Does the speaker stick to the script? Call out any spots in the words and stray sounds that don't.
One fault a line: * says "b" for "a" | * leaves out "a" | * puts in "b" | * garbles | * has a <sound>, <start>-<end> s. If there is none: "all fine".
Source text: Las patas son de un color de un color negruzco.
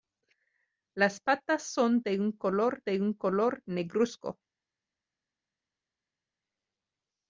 all fine